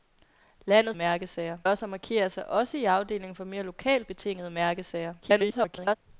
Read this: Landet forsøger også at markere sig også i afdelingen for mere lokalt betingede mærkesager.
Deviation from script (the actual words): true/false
true